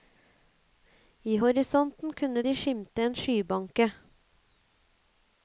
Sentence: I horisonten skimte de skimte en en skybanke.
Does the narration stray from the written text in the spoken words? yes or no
yes